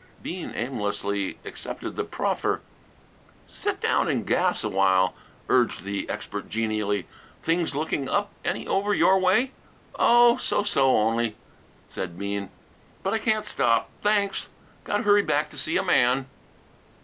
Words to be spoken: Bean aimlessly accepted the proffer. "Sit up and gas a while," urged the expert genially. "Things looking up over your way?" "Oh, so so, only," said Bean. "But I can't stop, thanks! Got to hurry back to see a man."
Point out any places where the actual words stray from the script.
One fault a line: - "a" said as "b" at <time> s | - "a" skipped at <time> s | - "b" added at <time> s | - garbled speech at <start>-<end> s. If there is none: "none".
- "up" said as "down" at 3.8 s
- "any" added at 8.4 s